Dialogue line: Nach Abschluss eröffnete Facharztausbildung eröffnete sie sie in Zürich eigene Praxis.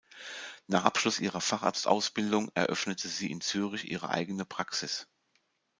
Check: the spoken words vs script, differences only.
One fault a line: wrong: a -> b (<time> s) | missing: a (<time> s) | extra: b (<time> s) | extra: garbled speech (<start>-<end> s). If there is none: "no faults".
wrong: eröffnete -> ihrer (1.2 s)
missing: sie (3.3 s)
extra: ihre (3.9 s)